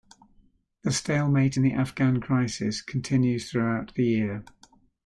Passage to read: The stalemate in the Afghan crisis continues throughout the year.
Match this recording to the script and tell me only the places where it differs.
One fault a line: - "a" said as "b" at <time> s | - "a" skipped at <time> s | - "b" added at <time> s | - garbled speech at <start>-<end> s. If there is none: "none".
none